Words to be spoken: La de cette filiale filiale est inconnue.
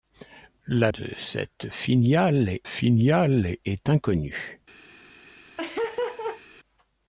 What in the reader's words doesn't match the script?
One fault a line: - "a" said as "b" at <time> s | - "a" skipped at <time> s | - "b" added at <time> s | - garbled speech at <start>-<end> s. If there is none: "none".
none